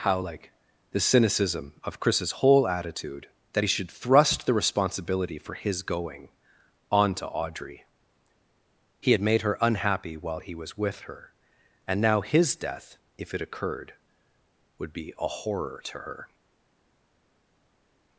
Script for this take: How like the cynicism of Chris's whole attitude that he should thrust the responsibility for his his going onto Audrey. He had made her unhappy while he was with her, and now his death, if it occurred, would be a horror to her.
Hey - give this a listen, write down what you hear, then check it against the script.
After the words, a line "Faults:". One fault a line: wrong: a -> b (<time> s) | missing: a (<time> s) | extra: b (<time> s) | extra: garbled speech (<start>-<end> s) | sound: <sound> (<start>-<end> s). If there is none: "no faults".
How like the cynicism of Chris's whole attitude that he should thrust the responsibility for his going onto Audrey. He had made her unhappy while he was with her, and now his death, if it occurred, would be a horror to her.
Faults:
missing: his (5.8 s)